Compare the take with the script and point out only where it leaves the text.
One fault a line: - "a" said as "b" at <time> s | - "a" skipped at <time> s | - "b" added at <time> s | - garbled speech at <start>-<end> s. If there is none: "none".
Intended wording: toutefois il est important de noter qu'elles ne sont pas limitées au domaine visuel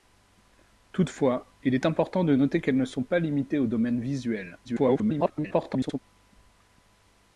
- garbled speech at 4.6-6.0 s